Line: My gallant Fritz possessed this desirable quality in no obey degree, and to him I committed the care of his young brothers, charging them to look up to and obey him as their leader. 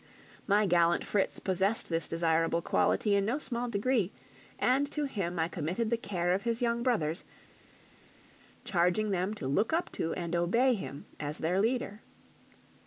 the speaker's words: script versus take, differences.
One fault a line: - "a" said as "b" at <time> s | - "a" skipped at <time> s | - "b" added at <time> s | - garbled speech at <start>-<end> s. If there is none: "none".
- "obey" said as "small" at 3.4 s